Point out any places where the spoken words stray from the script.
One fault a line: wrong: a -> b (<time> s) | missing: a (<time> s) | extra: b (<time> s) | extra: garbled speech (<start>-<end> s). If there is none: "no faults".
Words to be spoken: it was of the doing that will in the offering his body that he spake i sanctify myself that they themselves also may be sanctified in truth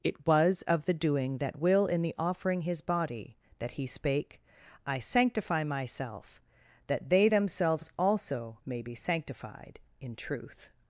no faults